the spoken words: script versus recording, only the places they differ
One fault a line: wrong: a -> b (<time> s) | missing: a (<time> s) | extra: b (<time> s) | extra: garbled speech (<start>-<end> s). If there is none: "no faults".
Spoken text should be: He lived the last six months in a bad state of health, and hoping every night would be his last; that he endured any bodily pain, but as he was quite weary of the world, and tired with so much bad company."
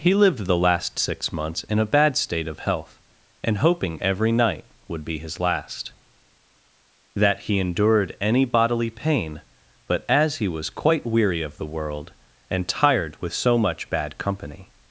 no faults